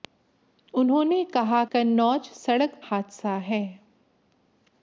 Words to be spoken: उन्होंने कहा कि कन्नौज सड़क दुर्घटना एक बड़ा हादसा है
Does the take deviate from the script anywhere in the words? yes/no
yes